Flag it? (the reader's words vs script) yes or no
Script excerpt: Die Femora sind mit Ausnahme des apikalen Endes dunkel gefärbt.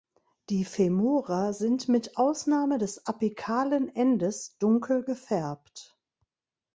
no